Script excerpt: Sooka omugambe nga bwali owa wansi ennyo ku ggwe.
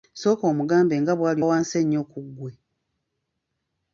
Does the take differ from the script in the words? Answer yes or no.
yes